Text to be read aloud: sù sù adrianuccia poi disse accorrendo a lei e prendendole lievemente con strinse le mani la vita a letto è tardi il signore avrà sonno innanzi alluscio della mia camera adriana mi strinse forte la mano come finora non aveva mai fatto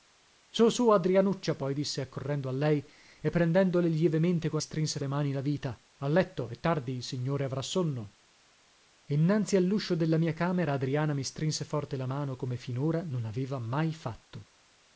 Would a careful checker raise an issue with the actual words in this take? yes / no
no